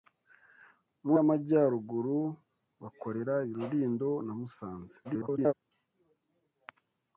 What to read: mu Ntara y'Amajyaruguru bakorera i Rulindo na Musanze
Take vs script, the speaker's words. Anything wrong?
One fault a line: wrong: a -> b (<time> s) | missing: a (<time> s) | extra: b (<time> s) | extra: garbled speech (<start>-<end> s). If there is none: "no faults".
missing: Ntara (1.1 s)
extra: garbled speech (5.0-5.5 s)